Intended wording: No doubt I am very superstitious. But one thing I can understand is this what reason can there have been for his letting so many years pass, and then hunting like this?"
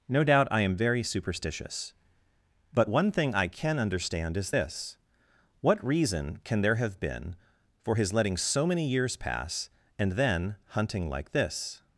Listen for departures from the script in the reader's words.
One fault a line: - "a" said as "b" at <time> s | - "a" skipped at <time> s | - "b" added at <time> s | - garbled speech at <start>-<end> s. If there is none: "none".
none